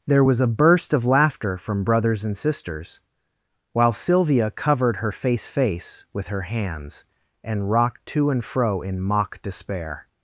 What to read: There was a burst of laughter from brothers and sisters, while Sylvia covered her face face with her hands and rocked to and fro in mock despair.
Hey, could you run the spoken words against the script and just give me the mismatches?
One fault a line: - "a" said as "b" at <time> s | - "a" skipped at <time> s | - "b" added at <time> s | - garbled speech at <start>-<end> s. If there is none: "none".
none